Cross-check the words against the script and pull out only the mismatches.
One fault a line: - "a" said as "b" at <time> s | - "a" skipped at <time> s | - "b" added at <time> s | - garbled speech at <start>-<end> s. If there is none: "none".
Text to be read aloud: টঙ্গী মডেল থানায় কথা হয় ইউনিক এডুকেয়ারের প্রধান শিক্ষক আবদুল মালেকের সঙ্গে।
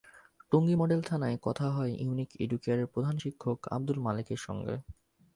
none